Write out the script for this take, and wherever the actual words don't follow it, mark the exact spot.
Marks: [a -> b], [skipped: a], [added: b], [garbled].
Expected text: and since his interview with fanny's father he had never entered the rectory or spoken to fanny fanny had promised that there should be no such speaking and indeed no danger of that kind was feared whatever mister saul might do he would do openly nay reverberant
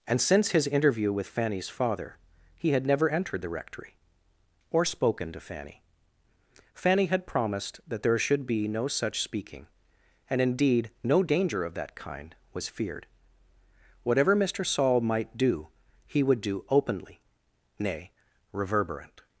and since his interview with fanny's father he had never entered the rectory or spoken to fanny fanny had promised that there should be no such speaking and indeed no danger of that kind was feared whatever mister saul might do he would do openly nay reverberant